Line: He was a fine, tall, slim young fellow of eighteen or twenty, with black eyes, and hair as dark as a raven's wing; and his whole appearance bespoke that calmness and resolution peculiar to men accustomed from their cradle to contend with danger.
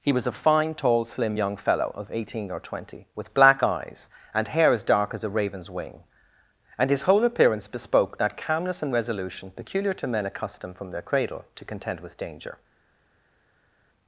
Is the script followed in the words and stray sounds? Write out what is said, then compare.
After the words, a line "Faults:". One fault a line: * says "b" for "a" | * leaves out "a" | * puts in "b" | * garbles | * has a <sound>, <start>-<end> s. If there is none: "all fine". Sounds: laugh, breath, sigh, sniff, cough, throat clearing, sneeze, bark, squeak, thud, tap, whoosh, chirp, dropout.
He was a fine, tall, slim young fellow of eighteen or twenty, with black eyes, and hair as dark as a raven's wing; and his whole appearance bespoke that calmness and resolution peculiar to men accustomed from their cradle to contend with danger.
Faults:
all fine